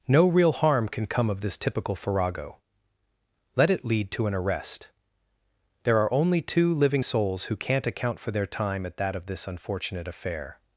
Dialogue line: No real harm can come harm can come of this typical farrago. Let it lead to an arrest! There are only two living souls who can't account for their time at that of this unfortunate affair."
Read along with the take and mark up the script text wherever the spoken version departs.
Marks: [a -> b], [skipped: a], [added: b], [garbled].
No real harm can come [skipped: harm can come] of this typical farrago. Let it lead to an arrest! There are only two living souls who can't account for their time at that of this unfortunate affair."